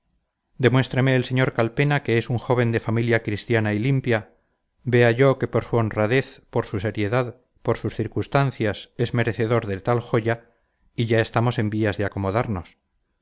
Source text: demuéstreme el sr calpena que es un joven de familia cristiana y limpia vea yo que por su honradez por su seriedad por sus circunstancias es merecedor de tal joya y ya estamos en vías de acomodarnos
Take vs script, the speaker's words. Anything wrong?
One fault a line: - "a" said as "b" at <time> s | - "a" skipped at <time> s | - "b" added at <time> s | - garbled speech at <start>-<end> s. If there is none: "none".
none